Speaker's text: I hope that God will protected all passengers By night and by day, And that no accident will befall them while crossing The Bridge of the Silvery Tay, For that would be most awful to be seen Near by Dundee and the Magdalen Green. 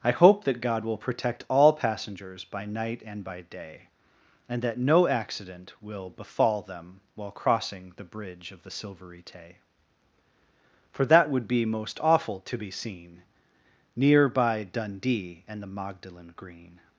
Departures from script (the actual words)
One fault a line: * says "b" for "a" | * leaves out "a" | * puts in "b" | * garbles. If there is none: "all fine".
* says "protect" for "protected"